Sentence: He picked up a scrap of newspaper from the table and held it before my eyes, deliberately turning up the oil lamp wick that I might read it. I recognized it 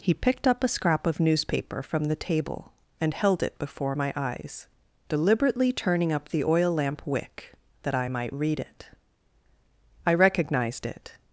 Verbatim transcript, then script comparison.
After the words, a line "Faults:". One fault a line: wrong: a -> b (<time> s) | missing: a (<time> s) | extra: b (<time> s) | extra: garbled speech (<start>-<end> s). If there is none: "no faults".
He picked up a scrap of newspaper from the table and held it before my eyes, deliberately turning up the oil lamp wick that I might read it. I recognized it
Faults:
no faults